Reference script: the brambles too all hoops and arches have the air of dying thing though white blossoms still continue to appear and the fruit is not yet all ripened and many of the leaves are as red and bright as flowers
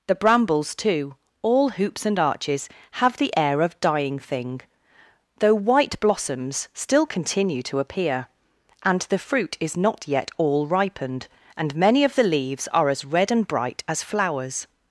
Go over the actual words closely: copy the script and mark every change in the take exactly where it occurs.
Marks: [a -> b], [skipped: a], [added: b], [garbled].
the brambles too all hoops and arches have the air of dying thing though white blossoms still continue to appear and the fruit is not yet all ripened and many of the leaves are as red and bright as flowers